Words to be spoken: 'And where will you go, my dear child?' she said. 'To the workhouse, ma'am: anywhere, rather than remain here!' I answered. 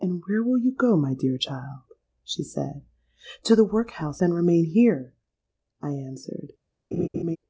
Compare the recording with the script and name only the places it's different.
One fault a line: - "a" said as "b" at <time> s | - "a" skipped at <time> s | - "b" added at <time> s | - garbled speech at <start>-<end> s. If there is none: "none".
- "ma'am anywhere rather" skipped at 4.2 s